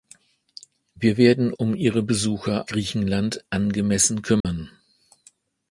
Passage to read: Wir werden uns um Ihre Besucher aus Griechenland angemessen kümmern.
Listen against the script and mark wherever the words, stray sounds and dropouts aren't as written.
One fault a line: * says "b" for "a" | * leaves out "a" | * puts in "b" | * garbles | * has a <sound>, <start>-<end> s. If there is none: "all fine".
* leaves out "uns"
* leaves out "aus"
* has a dropout, 4.4-4.4 s